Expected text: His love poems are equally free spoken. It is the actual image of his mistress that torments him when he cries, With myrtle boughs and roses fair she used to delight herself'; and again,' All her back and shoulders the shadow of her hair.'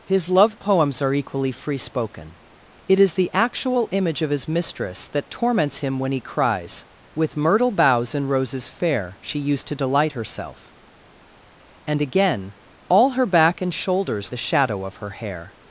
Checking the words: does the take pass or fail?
pass